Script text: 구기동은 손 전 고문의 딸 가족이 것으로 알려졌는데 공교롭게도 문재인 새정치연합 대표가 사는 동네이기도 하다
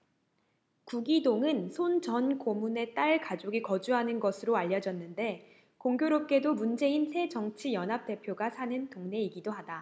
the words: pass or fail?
fail